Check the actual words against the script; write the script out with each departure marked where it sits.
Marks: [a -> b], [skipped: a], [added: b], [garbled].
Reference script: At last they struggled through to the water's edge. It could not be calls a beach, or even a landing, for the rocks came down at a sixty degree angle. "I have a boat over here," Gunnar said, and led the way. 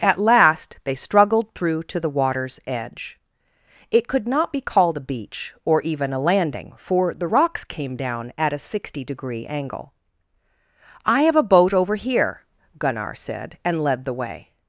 At last they struggled through to the water's edge. It could not be [calls -> called] a beach, or even a landing, for the rocks came down at a sixty degree angle. "I have a boat over here," Gunnar said, and led the way.